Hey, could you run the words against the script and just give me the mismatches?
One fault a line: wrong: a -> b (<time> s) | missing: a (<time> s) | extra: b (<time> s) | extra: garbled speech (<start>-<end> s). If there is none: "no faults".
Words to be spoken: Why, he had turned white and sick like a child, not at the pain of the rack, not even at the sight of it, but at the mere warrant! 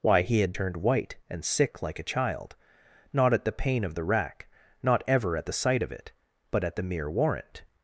wrong: even -> ever (5.1 s)